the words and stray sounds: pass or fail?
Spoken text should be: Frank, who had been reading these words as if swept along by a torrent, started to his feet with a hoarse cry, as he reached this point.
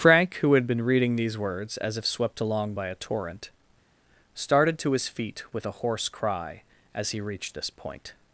pass